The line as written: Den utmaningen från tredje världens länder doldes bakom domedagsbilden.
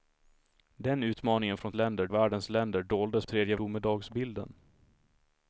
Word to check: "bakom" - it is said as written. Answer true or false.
false